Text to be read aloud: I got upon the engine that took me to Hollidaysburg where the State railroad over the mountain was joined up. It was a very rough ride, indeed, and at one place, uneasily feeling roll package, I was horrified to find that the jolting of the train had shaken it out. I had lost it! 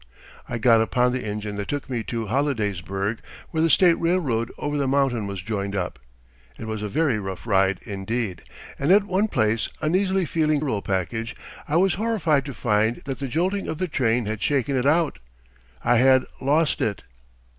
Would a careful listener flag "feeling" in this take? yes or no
no